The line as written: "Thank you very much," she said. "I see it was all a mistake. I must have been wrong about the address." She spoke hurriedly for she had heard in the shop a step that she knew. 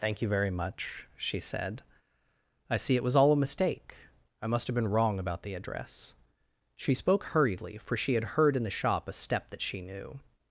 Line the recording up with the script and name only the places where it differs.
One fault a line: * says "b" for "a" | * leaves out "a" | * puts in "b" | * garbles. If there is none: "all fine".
all fine